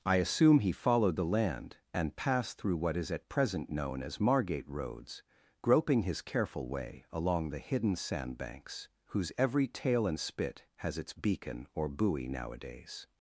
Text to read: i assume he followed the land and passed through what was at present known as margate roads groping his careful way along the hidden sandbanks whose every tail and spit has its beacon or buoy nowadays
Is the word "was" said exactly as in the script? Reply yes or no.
no